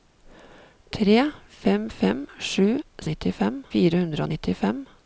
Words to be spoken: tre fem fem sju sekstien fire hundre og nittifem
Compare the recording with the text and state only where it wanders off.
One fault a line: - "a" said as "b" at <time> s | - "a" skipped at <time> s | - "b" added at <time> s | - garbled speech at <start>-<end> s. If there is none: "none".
- "sekstien" said as "nittifem" at 3.1 s